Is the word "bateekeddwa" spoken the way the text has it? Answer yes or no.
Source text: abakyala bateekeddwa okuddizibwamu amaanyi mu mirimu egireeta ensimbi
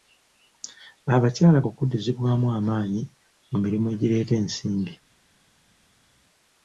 no